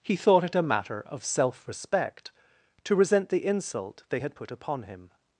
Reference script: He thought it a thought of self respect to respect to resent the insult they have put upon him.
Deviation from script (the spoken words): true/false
true